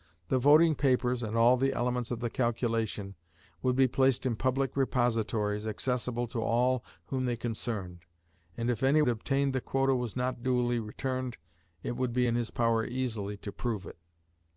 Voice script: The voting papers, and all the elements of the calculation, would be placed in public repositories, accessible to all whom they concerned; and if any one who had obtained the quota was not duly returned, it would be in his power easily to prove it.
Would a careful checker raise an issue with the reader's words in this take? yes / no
yes